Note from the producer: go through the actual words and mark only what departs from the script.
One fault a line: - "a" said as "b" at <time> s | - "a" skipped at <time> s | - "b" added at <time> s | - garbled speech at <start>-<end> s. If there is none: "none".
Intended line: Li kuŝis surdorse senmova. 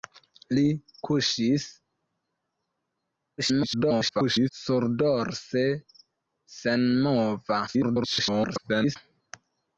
- garbled speech at 3.4-4.5 s
- garbled speech at 7.7-9.0 s